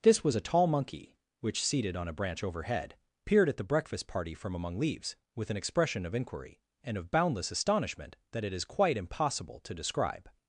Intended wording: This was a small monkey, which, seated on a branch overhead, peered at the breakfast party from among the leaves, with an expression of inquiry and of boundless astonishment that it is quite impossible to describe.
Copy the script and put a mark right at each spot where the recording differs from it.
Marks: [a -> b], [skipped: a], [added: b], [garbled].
This was a [small -> tall] monkey, which, seated on a branch overhead, peered at the breakfast party from among [skipped: the] leaves, with an expression of inquiry and of boundless astonishment that it is quite impossible to describe.